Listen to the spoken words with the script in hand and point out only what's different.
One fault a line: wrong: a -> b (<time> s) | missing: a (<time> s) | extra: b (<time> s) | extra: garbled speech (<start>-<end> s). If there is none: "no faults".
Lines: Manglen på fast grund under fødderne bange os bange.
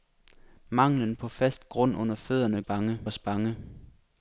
no faults